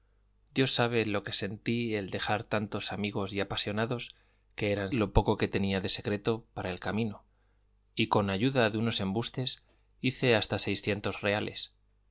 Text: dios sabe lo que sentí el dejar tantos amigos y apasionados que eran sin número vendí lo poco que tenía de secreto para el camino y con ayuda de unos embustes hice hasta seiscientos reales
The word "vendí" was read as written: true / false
false